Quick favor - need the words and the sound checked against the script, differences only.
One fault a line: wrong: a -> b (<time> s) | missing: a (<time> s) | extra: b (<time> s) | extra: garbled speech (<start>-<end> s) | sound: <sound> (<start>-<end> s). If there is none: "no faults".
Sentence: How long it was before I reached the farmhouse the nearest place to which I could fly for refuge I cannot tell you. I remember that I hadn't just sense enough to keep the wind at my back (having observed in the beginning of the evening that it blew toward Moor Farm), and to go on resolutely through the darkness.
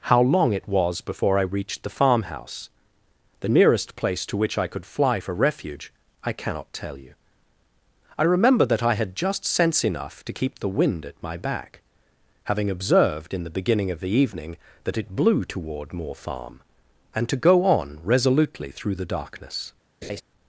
wrong: hadn't -> had (8.9 s)
sound: laugh (20.0-20.2 s)